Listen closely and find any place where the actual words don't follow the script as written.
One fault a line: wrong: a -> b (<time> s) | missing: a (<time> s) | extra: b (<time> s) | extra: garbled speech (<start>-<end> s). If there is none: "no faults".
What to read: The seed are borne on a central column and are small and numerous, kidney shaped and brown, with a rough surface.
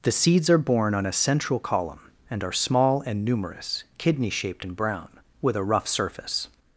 wrong: seed -> seeds (0.1 s)